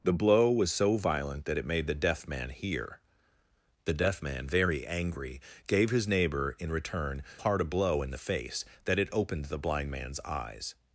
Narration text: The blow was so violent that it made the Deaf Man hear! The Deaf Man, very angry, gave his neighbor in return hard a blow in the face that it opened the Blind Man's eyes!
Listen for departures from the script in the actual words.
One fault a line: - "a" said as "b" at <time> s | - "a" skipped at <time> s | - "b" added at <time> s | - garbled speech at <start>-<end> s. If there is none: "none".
none